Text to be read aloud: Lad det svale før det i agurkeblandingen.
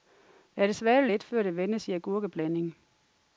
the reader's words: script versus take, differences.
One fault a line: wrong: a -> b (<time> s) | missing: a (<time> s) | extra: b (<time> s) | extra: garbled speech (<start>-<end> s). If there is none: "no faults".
extra: lidt (1.1 s)
extra: vendes (1.5 s)